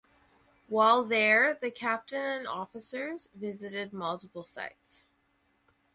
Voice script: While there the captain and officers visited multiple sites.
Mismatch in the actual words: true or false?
false